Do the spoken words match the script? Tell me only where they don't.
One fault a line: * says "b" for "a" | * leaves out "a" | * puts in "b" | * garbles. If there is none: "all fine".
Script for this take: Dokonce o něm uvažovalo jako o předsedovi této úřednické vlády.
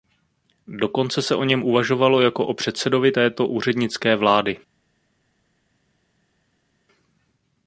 * puts in "se"